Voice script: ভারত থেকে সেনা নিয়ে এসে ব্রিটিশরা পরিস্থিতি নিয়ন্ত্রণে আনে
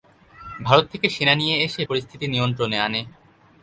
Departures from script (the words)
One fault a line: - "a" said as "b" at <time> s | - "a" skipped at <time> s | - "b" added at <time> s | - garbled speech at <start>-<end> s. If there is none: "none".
- "ব্রিটিশরা" skipped at 1.8 s